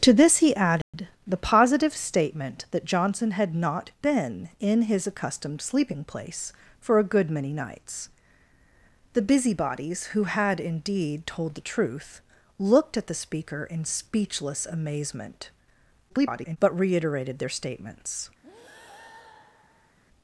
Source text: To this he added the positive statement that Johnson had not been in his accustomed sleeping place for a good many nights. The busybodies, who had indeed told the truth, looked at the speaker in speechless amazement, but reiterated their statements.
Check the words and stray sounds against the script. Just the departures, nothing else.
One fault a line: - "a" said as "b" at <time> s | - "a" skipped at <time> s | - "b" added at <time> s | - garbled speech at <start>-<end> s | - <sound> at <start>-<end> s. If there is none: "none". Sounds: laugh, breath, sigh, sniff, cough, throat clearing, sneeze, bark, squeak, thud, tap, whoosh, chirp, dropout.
- dropout at 0.8-0.9 s
- garbled speech at 16.1-16.6 s
- breath at 18.4-20.0 s